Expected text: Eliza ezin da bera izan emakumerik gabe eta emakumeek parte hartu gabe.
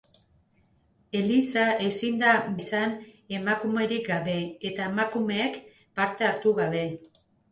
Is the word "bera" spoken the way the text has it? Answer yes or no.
no